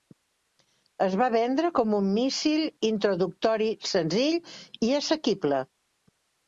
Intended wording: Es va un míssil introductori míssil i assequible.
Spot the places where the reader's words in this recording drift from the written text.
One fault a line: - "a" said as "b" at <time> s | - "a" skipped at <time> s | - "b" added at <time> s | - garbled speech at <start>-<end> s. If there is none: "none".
- "vendre com" added at 1.4 s
- "míssil" said as "senzill" at 4.0 s